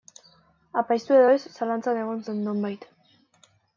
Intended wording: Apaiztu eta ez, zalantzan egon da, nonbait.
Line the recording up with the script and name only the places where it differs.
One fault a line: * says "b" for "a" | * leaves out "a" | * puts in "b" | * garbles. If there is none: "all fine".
* says "edo" for "eta"
* says "zen" for "da"